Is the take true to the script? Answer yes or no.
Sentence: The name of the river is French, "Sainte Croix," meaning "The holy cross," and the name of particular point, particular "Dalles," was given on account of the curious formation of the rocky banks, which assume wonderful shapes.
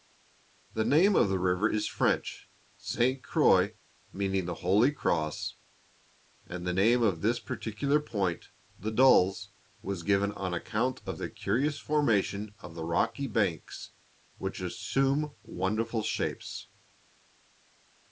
no